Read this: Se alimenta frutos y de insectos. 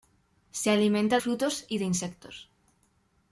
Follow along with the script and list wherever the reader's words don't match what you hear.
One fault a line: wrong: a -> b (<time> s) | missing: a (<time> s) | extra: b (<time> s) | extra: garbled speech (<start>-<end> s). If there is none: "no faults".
no faults